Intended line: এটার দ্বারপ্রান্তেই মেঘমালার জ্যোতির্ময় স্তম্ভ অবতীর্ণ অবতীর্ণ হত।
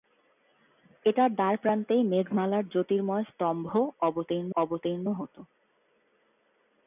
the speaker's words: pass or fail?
pass